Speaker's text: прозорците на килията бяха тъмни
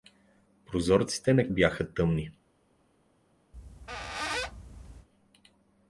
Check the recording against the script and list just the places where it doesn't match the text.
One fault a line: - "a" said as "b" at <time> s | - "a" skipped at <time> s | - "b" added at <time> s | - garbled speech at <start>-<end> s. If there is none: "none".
- "килията" skipped at 1.5 s